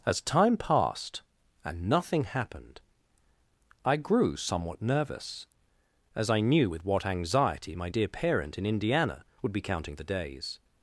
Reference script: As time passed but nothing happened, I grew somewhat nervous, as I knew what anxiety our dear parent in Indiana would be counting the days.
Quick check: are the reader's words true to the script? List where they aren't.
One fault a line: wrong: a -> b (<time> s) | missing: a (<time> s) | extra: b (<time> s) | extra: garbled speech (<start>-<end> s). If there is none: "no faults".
wrong: but -> and (1.6 s)
extra: with (6.7 s)
wrong: our -> my (7.7 s)